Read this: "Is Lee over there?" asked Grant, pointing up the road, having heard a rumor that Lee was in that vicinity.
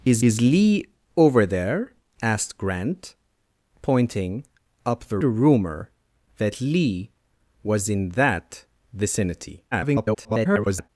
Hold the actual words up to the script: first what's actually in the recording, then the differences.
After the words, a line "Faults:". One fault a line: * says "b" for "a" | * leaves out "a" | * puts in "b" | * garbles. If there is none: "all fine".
"Is is Lee over there?" asked Grant, pointing up the a rumor that Lee was in that vicinity. [garbled]
Faults:
* puts in "is"
* leaves out "road having heard"
* garbles